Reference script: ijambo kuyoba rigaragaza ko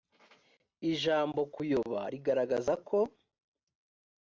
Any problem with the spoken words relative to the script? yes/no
no